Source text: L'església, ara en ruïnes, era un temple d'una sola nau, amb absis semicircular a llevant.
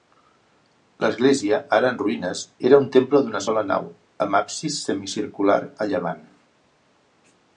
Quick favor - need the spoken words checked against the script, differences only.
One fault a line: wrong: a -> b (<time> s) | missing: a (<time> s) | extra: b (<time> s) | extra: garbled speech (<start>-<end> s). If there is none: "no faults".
no faults